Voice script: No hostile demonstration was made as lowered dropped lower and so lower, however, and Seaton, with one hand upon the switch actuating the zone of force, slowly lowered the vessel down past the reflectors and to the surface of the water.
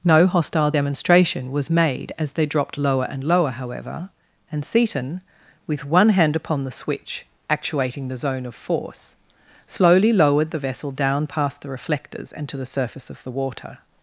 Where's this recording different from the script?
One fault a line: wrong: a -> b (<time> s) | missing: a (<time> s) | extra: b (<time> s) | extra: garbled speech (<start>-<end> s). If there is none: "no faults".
wrong: lowered -> they (2.3 s)
missing: so (3.2 s)